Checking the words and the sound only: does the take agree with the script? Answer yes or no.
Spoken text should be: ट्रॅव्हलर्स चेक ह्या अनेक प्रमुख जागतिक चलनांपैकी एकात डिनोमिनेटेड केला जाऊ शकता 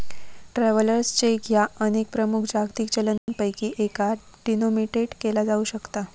no